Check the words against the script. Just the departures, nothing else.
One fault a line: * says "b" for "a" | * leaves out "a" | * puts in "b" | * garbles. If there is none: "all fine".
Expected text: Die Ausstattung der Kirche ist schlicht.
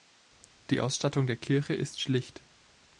all fine